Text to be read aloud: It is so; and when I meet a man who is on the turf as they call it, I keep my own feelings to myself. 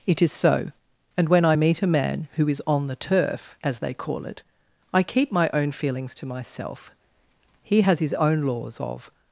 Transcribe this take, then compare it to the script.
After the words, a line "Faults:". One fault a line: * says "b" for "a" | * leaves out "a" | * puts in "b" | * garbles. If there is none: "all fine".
It is so; and when I meet a man who is on the turf as they call it, I keep my own feelings to myself. He has his own laws of
Faults:
* puts in "He has his own laws of"